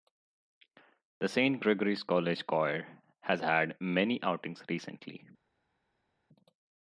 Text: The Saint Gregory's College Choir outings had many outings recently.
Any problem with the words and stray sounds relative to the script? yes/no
yes